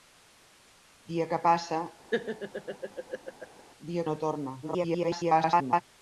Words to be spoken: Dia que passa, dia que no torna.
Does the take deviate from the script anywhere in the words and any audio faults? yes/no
yes